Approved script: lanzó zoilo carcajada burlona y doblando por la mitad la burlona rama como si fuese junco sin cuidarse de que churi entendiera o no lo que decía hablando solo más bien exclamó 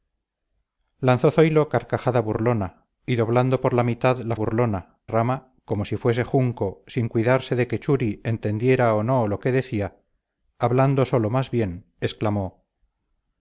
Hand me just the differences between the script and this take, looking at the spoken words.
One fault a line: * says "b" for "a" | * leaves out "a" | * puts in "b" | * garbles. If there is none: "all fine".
all fine